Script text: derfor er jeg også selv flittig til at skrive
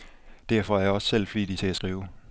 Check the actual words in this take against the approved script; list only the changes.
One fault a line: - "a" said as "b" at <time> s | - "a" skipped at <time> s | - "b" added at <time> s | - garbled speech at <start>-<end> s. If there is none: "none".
none